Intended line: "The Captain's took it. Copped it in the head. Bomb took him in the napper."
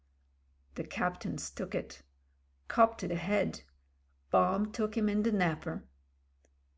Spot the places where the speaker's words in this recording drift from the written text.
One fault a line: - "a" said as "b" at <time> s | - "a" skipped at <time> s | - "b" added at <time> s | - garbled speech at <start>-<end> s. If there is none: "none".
- "in" skipped at 3.1 s